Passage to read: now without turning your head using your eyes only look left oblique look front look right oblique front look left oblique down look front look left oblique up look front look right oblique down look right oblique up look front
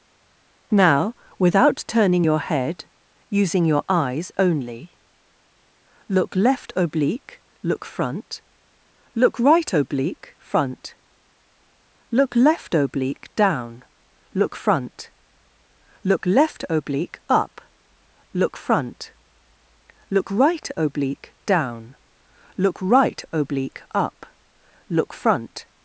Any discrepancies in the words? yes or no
no